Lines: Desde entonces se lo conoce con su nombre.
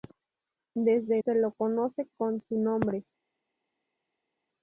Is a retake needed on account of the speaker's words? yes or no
yes